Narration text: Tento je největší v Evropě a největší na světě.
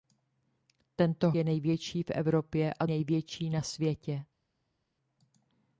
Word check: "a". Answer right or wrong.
right